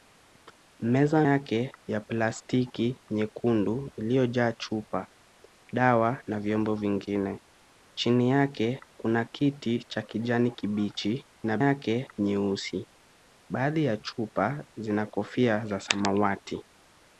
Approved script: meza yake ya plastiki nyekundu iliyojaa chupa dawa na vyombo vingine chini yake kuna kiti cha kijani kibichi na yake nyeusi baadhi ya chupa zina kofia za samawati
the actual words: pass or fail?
pass